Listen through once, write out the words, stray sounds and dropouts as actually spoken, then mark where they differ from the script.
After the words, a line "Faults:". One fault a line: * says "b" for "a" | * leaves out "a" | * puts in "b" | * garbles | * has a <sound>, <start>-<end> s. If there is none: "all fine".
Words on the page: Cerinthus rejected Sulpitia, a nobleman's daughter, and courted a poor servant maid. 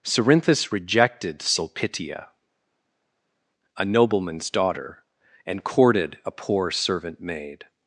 Cerinthus rejected Sulpitia, a nobleman's daughter, and courted a poor servant maid.
Faults:
all fine